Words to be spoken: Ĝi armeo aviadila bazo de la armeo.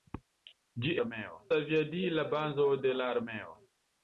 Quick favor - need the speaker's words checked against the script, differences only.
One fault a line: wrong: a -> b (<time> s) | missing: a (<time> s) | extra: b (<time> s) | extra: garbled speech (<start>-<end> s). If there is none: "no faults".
no faults